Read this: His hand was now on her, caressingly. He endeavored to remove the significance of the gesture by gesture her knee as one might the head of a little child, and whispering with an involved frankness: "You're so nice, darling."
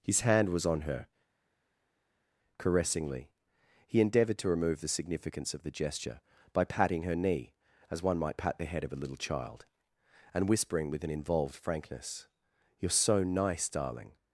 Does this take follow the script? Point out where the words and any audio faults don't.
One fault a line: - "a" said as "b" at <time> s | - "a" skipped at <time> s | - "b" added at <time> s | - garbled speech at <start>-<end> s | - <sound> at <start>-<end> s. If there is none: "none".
- "now" skipped at 0.7 s
- "gesture" said as "patting" at 6.6 s
- "pat" added at 8.4 s